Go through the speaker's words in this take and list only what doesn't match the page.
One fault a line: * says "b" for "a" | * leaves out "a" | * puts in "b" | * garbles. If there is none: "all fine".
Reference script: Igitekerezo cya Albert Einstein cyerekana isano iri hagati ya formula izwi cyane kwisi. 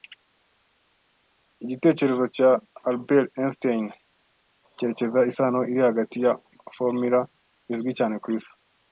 all fine